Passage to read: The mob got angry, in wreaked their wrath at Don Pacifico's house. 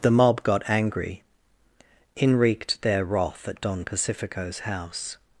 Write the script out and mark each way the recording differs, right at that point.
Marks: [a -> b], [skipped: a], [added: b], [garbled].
The mob got angry, in wreaked their wrath at Don Pacifico's house.